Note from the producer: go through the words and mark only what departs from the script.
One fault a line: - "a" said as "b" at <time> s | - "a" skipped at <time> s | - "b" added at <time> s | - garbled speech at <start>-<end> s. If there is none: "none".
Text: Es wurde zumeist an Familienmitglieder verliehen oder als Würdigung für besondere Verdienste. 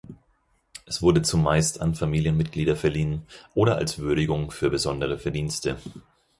none